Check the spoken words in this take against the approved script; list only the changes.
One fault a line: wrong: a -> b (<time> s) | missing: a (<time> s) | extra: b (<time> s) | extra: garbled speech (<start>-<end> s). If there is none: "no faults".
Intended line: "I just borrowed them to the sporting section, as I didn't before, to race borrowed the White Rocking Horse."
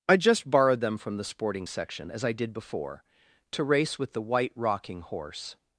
wrong: to -> from (1.0 s)
wrong: didn't -> did (2.3 s)
wrong: borrowed -> with (4.0 s)